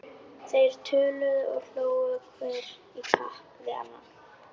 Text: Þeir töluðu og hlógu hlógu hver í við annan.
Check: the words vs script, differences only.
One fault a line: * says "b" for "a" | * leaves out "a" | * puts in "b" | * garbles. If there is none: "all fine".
* leaves out "hlógu"
* puts in "kapp"